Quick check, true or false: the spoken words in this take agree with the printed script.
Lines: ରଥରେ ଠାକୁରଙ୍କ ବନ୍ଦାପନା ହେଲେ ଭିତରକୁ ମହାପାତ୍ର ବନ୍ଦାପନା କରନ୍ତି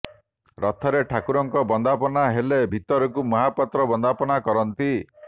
true